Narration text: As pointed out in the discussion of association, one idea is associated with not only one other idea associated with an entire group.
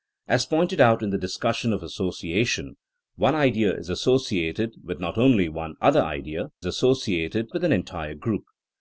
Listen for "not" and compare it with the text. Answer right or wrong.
right